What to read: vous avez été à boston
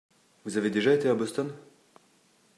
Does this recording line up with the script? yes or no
no